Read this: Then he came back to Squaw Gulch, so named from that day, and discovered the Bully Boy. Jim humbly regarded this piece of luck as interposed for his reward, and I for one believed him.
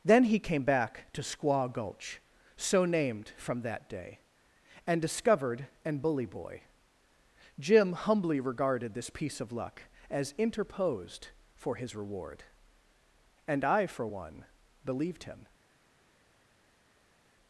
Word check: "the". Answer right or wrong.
wrong